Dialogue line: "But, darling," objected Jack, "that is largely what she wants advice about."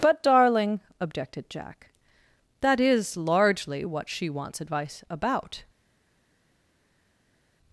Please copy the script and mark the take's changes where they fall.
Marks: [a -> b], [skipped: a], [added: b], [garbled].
"But, darling," objected Jack, "that is largely what she wants advice about."